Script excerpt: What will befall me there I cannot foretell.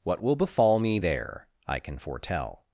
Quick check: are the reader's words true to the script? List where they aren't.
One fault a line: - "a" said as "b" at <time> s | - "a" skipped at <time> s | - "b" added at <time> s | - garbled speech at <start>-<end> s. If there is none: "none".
- "cannot" said as "can" at 1.8 s